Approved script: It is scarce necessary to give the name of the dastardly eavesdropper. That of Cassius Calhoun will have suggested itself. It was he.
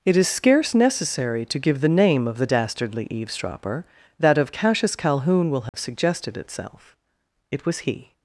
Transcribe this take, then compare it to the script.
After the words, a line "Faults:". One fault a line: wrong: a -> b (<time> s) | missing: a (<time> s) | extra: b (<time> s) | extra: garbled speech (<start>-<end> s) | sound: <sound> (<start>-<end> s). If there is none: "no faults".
It is scarce necessary to give the name of the dastardly eavesdropper. That of Cassius Calhoun will have suggested itself. It was he.
Faults:
sound: dropout (5.7-5.7 s)